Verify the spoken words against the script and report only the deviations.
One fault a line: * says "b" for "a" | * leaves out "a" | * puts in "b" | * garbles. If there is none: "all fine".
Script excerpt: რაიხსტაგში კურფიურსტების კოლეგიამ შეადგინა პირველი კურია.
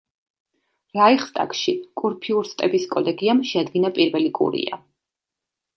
all fine